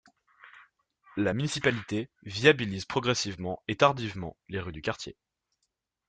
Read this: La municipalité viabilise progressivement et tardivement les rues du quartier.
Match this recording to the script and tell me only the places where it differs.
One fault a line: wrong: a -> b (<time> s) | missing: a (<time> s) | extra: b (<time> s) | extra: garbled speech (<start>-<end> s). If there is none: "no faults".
no faults